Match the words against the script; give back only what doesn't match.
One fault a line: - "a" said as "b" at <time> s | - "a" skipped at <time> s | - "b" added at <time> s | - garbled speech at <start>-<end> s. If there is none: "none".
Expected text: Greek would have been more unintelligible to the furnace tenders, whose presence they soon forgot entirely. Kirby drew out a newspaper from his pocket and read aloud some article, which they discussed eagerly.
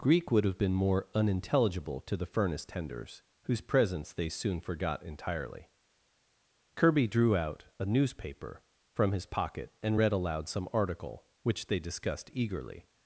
none